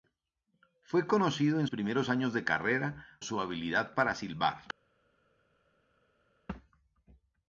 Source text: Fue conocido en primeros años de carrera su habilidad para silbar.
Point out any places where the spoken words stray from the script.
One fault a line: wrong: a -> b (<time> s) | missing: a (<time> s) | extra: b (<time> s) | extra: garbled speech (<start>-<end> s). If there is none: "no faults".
no faults